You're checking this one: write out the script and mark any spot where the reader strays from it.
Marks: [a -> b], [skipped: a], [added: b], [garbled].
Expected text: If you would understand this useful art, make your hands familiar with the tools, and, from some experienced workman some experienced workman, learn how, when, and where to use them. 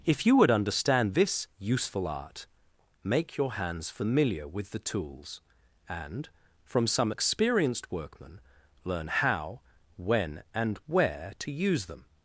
If you would understand this useful art, make your hands familiar with the tools, and, from some experienced workman [skipped: some experienced workman,] learn how, when, and where to use them.